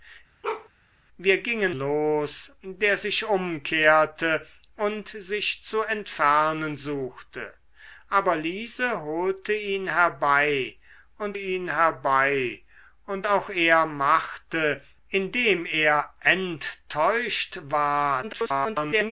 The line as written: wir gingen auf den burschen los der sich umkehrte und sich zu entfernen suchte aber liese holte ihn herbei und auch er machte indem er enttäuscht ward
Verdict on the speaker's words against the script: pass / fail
fail